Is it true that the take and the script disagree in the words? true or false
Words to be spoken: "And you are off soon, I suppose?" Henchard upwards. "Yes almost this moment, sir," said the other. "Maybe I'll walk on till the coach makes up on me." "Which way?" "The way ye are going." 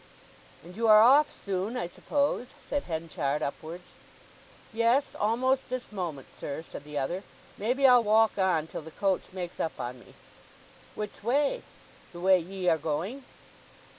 true